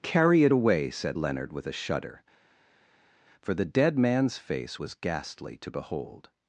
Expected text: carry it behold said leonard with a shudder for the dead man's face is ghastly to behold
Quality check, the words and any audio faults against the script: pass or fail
fail